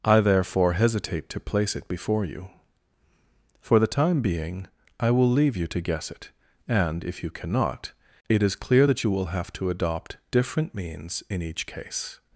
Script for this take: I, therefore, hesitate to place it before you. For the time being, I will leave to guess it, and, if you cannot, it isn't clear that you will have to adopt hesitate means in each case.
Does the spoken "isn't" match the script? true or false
false